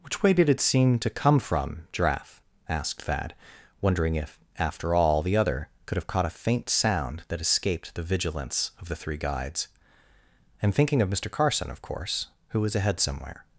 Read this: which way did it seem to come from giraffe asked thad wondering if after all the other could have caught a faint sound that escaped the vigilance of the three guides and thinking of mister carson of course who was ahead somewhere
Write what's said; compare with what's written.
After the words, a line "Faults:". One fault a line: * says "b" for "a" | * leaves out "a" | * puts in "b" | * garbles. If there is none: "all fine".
which way did it seem to come from giraffe asked thad wondering if after all the other could have caught a faint sound that escaped the vigilance of the three guides and thinking of mister carson of course who was ahead somewhere
Faults:
all fine